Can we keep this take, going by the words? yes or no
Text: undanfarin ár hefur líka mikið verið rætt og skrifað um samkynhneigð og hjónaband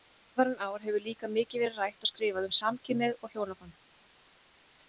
yes